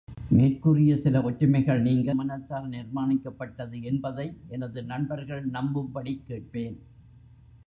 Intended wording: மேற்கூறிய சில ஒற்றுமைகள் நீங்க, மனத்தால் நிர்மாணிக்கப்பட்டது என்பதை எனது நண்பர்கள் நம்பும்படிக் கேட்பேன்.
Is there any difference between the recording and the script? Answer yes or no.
no